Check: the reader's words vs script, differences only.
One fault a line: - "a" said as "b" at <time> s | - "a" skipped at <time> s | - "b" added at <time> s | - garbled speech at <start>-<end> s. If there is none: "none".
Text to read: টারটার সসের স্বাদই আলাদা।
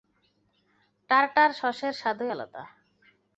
none